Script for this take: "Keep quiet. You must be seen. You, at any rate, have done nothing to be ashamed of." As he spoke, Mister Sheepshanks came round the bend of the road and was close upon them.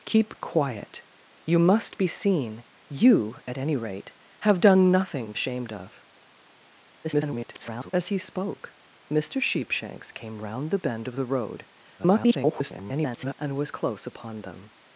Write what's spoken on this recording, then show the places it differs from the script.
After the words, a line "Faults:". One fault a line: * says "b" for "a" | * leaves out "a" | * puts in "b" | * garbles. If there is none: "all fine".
"Keep quiet. You must be seen. You, at any rate, have done nothing ashamed of." [garbled] As he spoke, Mister Sheepshanks came round the bend of the road [garbled] and was close upon them.
Faults:
* leaves out "to be"
* garbles
* garbles